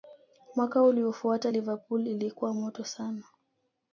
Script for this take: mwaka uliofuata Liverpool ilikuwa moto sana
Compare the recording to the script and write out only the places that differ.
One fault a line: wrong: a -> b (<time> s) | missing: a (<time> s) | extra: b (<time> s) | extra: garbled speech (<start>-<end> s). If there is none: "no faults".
no faults